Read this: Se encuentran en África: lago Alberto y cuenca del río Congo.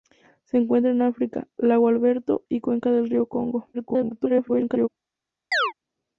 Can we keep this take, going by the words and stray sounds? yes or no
no